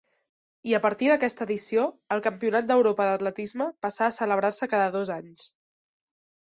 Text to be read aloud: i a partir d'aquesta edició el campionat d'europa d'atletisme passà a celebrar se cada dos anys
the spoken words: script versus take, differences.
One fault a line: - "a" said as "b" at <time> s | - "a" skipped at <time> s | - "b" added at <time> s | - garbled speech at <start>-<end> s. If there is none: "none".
none